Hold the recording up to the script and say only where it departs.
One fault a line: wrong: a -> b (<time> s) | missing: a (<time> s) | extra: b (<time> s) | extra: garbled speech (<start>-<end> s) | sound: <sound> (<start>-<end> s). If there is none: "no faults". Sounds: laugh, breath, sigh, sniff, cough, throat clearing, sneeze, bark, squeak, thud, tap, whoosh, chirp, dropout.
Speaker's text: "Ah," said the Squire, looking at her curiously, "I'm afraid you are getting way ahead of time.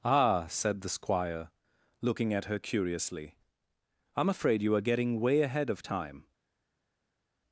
no faults